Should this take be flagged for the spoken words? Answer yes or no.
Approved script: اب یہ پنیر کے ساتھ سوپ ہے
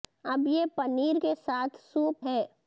no